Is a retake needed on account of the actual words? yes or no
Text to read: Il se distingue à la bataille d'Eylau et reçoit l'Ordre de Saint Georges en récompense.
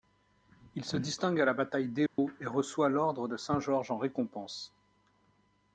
no